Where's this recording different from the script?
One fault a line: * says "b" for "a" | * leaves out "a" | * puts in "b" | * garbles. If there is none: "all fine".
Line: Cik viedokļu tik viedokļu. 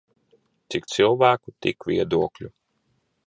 * says "cilvēku" for "viedokļu"